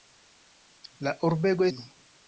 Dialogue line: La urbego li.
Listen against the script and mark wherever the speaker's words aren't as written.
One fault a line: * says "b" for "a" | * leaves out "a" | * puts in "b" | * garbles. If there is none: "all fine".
all fine